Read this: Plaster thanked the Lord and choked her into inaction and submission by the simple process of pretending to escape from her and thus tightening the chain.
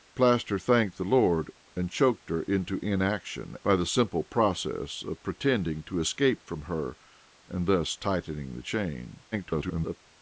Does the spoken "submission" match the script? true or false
false